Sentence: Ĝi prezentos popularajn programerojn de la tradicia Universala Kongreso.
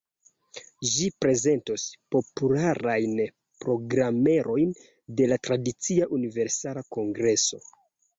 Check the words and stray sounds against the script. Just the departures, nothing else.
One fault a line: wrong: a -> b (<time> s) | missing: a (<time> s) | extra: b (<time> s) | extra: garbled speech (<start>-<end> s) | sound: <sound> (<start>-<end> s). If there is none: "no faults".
no faults